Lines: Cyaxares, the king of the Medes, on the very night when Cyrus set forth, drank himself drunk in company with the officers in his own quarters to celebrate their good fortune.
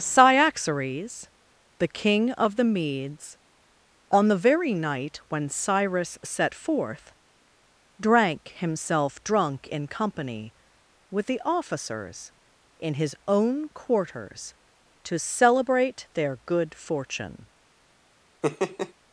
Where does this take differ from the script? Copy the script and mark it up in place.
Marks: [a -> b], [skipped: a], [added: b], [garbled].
Cyaxares, the king of the Medes, on the very night when Cyrus set forth, drank himself drunk in company with the officers in his own quarters to celebrate their good fortune.